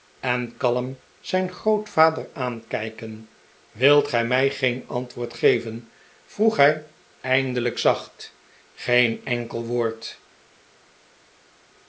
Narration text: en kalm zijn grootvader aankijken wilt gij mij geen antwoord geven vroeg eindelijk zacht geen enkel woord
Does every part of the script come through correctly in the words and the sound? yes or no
no